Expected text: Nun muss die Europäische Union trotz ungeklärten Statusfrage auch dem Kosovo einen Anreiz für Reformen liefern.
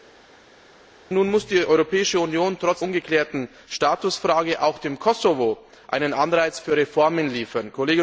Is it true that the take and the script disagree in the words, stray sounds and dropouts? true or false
false